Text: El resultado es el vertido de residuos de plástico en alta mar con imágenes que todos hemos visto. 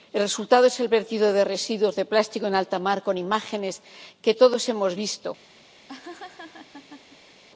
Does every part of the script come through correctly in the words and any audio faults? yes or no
no